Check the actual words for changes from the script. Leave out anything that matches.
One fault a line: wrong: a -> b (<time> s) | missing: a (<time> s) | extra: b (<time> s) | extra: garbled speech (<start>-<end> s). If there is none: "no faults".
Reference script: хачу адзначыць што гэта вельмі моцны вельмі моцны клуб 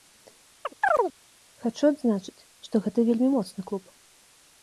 missing: вельмі моцны (3.7 s)